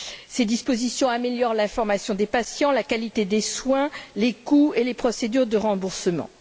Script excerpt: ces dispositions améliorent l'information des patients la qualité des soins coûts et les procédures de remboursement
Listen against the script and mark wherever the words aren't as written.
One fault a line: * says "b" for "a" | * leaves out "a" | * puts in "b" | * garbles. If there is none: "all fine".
* puts in "les"